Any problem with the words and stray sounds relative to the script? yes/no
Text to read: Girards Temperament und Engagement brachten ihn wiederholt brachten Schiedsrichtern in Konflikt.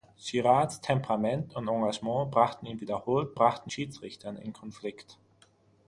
no